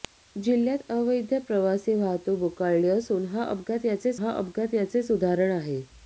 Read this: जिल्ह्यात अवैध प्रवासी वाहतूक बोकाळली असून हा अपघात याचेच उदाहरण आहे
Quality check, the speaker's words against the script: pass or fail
fail